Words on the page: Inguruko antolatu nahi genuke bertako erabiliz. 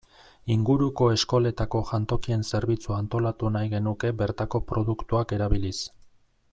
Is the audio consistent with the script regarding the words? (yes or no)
no